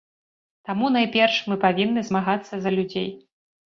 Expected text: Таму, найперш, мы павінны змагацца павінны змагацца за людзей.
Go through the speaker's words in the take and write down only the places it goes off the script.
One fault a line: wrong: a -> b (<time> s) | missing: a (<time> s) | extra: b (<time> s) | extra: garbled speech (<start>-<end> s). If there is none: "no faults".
missing: павінны змагацца (2.5 s)